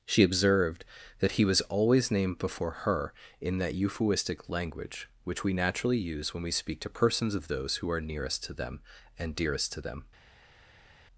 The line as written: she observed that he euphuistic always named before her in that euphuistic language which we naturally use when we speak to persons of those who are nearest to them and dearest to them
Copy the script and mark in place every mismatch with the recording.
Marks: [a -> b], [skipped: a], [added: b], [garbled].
she observed that he [euphuistic -> was] always named before her in that euphuistic language which we naturally use when we speak to persons of those who are nearest to them and dearest to them